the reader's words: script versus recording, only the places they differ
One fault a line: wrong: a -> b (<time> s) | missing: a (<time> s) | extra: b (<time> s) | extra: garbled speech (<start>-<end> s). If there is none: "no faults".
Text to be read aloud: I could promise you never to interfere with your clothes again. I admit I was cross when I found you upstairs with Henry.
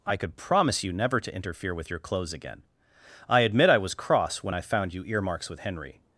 wrong: upstairs -> earmarks (5.0 s)